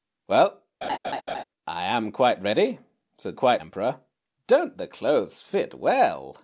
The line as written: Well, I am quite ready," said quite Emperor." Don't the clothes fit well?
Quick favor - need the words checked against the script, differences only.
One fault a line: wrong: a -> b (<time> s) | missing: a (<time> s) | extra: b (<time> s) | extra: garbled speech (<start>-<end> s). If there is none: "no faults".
no faults